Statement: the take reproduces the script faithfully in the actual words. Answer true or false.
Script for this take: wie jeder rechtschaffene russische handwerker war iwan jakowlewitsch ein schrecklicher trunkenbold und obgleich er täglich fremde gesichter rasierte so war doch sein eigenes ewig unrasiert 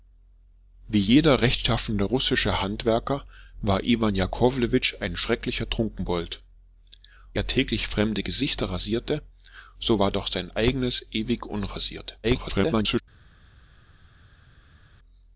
false